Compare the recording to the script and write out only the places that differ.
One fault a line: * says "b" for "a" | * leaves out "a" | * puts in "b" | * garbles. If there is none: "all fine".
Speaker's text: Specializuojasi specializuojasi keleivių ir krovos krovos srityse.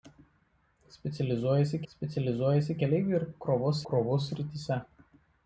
all fine